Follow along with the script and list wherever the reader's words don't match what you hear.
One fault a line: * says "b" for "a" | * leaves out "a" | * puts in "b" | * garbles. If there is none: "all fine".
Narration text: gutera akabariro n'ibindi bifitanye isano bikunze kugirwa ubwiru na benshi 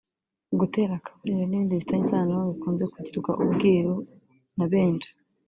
all fine